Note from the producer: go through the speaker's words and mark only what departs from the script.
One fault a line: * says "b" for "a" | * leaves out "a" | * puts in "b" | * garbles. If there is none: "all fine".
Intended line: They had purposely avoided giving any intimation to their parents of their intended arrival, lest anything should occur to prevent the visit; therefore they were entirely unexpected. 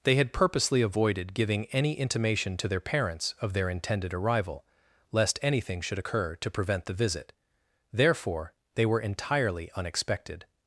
all fine